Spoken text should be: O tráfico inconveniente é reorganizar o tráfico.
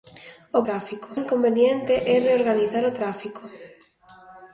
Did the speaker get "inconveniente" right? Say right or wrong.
right